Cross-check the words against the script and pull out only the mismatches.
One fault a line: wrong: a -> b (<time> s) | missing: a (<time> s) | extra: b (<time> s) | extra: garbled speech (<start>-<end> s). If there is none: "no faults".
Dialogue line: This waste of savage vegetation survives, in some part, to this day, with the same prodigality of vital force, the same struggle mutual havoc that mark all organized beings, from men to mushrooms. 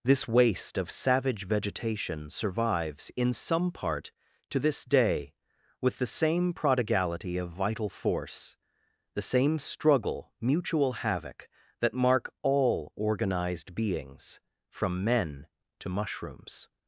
no faults